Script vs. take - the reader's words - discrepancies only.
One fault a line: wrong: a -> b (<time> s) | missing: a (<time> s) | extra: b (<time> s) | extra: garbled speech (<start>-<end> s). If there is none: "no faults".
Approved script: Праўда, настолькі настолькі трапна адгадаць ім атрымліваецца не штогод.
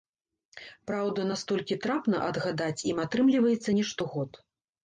missing: настолькі (1.8 s)